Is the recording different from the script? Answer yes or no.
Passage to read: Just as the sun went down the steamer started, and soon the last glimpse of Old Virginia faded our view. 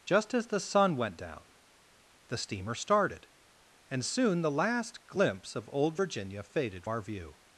no